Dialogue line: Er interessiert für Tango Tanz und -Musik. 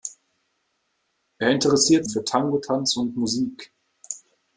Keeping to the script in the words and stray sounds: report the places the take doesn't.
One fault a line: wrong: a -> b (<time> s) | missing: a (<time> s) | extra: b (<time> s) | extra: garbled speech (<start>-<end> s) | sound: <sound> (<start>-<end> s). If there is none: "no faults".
no faults